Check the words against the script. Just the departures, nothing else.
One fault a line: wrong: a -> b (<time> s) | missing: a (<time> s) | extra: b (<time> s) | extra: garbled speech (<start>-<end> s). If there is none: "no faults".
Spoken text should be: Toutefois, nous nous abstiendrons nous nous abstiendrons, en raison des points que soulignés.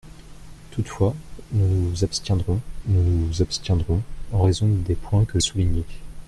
no faults